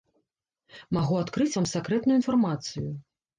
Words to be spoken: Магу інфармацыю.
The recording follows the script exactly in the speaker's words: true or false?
false